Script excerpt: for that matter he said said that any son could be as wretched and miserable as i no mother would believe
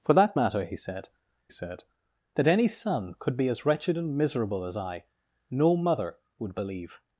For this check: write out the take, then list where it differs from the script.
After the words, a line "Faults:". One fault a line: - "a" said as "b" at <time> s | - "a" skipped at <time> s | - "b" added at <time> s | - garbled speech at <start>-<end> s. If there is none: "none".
for that matter he said said that any son could be as wretched and miserable as i no mother would believe
Faults:
none